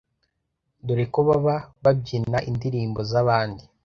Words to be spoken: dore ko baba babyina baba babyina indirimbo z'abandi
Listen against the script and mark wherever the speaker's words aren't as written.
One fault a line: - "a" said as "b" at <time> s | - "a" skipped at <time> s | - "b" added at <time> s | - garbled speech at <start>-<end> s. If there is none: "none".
- "baba babyina" skipped at 2.4 s